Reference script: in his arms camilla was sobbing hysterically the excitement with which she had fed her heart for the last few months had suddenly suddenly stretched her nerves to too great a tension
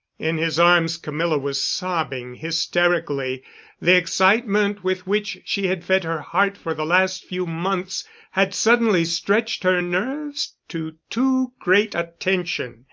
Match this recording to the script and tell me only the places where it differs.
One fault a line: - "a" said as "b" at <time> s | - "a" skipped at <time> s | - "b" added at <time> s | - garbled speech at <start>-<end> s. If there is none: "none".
- "suddenly" skipped at 9.1 s